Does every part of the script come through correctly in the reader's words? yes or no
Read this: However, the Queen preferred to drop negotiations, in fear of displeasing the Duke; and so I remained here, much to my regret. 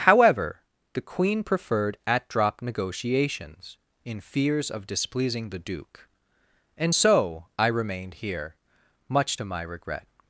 no